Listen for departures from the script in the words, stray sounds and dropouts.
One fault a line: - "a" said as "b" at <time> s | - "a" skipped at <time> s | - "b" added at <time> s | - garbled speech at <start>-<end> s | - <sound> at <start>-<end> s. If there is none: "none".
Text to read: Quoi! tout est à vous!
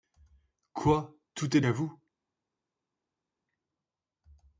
none